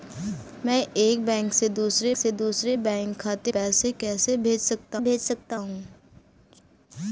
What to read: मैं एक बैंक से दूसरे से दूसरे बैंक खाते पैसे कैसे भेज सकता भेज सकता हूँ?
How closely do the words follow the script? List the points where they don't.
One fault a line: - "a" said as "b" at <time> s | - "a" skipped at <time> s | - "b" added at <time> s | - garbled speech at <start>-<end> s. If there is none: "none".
none